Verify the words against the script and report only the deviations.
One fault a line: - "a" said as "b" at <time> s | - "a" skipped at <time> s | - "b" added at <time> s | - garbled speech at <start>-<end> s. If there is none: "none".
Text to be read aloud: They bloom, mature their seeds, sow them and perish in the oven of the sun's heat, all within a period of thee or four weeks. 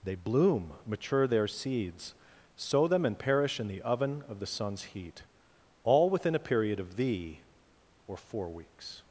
none